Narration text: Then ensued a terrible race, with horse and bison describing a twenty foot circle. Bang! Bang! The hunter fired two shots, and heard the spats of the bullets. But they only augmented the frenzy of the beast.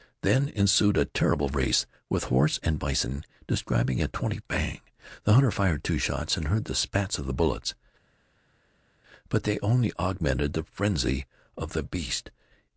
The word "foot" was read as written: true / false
false